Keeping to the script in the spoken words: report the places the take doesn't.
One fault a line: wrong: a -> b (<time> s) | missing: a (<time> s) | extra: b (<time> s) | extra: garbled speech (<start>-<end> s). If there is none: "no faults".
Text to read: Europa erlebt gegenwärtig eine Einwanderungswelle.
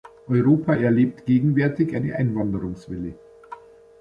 no faults